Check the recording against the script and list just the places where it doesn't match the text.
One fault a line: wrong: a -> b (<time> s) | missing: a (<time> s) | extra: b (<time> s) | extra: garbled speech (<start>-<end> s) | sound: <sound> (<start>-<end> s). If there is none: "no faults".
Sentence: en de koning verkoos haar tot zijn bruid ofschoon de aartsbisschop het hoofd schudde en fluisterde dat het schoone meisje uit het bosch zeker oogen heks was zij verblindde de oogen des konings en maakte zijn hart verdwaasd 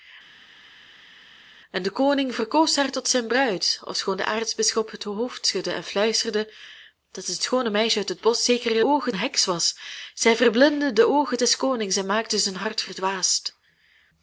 no faults